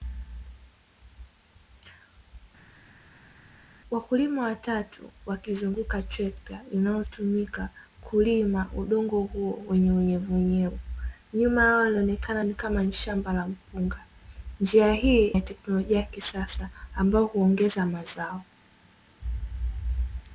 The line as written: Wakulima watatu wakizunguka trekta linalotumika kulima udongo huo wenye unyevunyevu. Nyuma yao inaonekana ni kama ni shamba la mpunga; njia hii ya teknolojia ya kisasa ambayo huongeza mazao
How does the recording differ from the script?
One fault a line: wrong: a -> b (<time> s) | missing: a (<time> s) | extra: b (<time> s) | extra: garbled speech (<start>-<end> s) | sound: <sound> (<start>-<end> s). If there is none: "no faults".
no faults